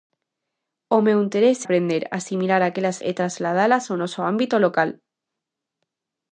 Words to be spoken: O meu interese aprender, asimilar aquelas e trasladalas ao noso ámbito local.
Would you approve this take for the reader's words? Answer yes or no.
yes